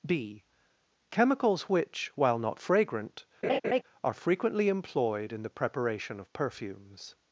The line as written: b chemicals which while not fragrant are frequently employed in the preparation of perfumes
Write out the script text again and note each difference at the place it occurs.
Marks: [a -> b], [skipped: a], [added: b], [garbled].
b chemicals which while not fragrant are frequently employed in the preparation of perfumes